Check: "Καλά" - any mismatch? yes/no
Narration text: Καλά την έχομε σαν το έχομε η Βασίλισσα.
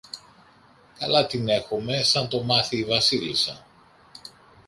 no